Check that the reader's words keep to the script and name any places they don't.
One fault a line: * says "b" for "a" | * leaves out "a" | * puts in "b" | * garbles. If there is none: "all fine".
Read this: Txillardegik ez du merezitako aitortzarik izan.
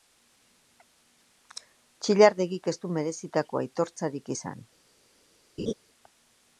all fine